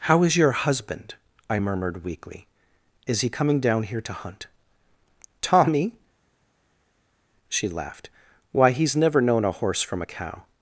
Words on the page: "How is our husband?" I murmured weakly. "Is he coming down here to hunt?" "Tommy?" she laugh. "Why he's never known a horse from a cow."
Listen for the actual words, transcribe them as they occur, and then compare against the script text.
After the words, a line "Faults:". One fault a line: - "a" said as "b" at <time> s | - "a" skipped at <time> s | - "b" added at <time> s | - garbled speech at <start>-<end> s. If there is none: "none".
"How is your husband?" I murmured weakly. "Is he coming down here to hunt?" "Tommy?" she laughed. "Why he's never known a horse from a cow."
Faults:
- "our" said as "your" at 0.3 s
- "laugh" said as "laughed" at 7.7 s